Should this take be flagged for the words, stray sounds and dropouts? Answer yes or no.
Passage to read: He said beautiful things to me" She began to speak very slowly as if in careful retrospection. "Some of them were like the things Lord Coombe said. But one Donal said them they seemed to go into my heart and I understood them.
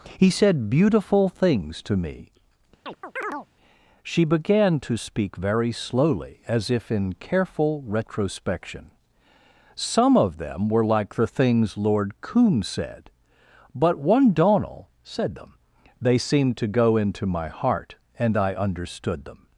yes